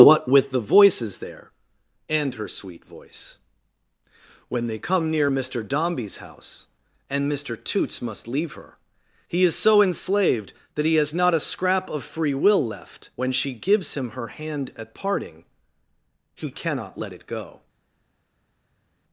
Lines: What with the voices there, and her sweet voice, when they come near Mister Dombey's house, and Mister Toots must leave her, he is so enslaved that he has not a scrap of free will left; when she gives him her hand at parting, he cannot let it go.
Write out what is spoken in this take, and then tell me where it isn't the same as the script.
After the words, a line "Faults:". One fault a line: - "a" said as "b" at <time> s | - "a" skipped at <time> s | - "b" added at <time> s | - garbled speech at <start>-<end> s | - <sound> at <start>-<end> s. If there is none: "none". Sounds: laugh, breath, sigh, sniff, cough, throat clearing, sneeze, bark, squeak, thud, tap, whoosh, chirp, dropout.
What with the voices there, and her sweet voice, when they come near Mister Dombey's house, and Mister Toots must leave her, he is so enslaved that he has not a scrap of free will left; when she gives him her hand at parting, he cannot let it go.
Faults:
none